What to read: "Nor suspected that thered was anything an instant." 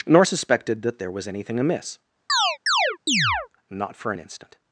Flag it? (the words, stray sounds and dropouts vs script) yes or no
yes